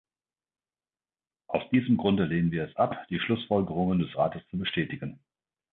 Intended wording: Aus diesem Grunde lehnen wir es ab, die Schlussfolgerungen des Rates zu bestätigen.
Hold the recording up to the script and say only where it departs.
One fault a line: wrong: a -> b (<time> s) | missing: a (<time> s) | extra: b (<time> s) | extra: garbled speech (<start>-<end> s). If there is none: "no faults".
no faults